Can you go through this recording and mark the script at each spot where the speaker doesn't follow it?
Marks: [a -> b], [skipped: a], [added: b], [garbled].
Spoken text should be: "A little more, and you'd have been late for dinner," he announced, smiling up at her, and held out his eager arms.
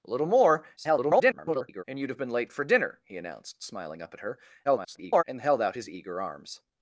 "A little more, [garbled] and you'd have been late for dinner," he announced, smiling up at her, [garbled] and held out his eager arms.